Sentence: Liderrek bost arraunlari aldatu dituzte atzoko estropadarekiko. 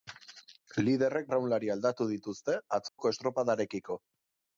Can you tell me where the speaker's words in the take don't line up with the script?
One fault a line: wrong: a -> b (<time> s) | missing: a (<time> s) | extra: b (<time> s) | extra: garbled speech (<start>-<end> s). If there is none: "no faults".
missing: bost (1.3 s)